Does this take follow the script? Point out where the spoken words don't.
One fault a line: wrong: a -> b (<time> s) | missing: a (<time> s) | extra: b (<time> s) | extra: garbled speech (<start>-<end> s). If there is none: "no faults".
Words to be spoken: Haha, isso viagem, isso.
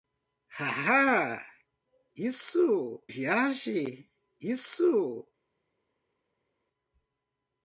no faults